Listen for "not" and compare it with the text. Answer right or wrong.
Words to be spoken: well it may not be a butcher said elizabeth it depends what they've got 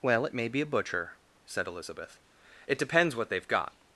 wrong